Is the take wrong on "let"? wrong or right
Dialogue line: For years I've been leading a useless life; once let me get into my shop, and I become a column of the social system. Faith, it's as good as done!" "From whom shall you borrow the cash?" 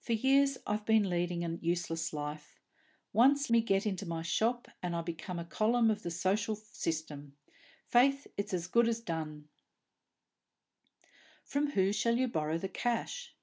wrong